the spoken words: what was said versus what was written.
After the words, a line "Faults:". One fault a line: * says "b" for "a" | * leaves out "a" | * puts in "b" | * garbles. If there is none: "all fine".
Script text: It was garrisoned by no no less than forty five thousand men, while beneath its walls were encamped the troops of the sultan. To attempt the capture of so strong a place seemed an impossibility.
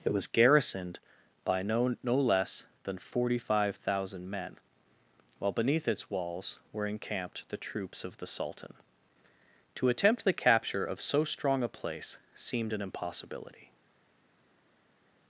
It was garrisoned by no no less than forty five thousand men, while beneath its walls were encamped the troops of the sultan. To attempt the capture of so strong a place seemed an impossibility.
Faults:
all fine